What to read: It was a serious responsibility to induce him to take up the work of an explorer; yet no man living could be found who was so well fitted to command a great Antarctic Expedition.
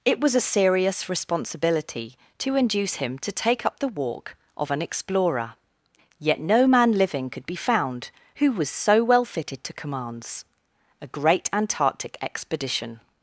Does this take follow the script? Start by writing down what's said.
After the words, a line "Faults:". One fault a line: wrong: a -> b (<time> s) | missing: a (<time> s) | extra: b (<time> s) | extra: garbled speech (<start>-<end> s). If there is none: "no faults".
It was a serious responsibility to induce him to take up the walk of an explorer; yet no man living could be found who was so well fitted to commands a great Antarctic Expedition.
Faults:
wrong: work -> walk (3.9 s)
wrong: command -> commands (9.7 s)